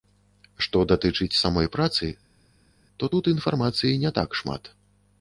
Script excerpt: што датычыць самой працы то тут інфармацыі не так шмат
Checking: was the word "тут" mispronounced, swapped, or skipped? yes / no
no